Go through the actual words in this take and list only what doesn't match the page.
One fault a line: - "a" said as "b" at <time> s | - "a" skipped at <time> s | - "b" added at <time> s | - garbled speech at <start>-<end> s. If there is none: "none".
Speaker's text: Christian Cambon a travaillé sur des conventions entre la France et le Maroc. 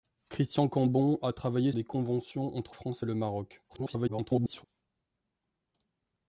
- "sur" skipped at 1.7 s
- "la" skipped at 2.8 s
- garbled speech at 3.7-4.6 s